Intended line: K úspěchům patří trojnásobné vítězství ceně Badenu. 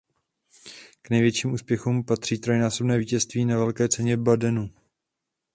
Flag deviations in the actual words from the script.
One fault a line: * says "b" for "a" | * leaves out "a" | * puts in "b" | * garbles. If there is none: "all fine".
* puts in "největším"
* puts in "na Velké"